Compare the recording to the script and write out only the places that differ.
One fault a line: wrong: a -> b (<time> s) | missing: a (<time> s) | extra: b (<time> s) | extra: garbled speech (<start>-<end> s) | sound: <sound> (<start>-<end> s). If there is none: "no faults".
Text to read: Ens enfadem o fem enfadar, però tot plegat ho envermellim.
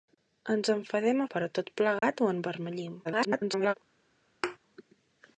missing: fem enfadar (1.3 s)
sound: dropout (2.0-2.0 s)
extra: garbled speech (3.0-3.7 s)
sound: thud (4.4-4.6 s)